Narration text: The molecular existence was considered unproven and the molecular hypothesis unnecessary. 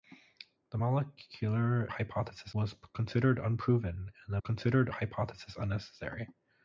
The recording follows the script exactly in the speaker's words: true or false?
false